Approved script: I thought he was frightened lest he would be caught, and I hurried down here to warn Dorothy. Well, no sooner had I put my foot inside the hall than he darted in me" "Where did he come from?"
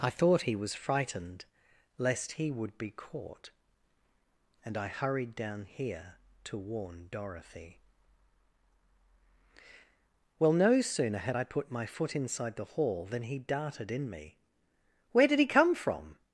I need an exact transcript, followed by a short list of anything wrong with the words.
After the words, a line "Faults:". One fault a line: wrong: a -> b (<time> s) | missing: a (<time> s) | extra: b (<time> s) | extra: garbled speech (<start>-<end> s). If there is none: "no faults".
I thought he was frightened lest he would be caught, and I hurried down here to warn Dorothy. Well, no sooner had I put my foot inside the hall than he darted in me" "Where did he come from?"
Faults:
no faults